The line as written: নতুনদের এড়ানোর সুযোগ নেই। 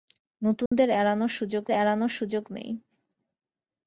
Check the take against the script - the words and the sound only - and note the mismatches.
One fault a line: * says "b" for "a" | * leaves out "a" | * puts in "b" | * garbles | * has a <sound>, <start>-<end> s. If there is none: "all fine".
* has a dropout, 0.7-0.7 s
* puts in "এড়ানোর সুযোগ"